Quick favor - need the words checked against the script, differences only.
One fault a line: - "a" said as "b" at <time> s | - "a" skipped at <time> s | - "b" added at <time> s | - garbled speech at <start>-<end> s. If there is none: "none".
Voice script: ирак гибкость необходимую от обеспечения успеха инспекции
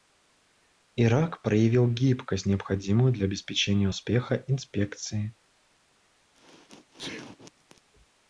- "проявил" added at 1.4 s
- "от" said as "для" at 3.1 s